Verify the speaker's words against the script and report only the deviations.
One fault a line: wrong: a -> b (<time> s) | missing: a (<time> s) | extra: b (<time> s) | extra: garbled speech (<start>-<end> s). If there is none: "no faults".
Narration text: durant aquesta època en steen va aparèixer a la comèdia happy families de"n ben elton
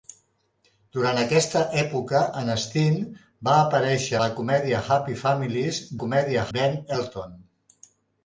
missing: a (4.2 s)
wrong: de"n -> comèdia (6.0 s)